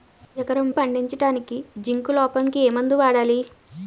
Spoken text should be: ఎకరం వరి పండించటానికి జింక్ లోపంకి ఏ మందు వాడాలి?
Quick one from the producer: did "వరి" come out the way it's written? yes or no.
no